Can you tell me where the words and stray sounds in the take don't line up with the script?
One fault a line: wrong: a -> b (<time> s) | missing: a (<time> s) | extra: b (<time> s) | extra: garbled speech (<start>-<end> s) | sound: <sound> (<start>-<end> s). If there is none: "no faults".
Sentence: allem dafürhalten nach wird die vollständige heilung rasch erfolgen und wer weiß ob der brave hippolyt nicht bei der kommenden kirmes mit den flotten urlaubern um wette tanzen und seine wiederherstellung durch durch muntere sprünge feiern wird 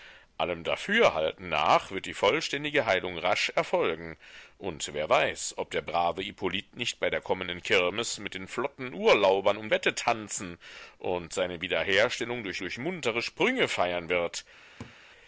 sound: laugh (14.8-15.0 s)